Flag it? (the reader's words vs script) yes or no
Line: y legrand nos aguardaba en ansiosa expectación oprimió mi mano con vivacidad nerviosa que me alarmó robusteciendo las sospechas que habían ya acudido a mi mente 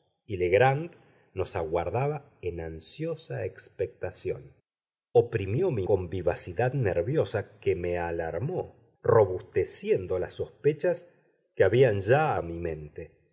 yes